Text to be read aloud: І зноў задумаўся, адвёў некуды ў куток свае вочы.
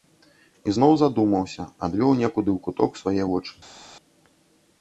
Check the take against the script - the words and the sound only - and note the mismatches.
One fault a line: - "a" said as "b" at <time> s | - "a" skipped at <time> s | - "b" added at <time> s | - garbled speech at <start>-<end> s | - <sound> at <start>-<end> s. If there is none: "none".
none